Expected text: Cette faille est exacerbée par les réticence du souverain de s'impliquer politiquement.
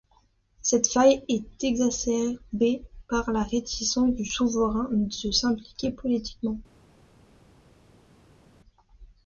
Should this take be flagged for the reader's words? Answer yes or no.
yes